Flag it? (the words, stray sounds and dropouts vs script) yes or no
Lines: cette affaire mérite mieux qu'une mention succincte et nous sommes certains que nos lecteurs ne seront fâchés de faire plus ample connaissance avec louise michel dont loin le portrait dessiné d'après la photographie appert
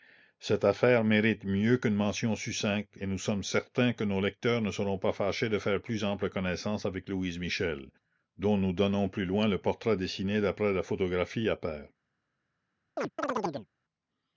yes